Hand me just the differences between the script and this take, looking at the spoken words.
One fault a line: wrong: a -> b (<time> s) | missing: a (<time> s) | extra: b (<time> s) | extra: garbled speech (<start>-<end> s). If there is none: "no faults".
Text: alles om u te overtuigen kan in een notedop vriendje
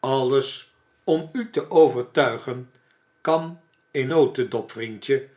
missing: een (4.1 s)